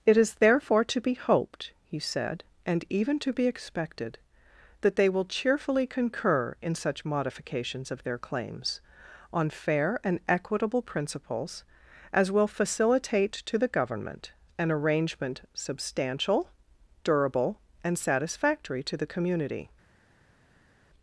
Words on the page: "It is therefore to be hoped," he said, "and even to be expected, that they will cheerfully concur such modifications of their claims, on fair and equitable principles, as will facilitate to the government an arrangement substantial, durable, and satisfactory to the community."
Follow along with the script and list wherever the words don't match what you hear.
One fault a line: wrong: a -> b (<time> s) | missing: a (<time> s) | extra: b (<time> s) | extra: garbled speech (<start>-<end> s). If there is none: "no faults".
extra: in (6.6 s)